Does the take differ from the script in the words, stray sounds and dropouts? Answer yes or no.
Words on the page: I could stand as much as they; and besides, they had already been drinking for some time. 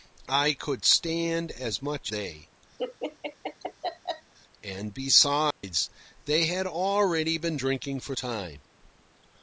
yes